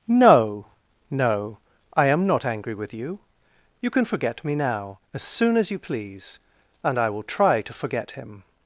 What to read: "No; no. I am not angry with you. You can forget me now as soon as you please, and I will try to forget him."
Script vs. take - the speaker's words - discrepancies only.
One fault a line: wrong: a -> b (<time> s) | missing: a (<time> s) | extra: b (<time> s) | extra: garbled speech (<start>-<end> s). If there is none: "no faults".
no faults